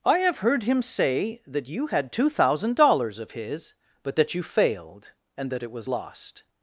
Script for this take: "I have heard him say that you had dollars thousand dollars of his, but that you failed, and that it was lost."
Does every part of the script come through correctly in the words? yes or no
no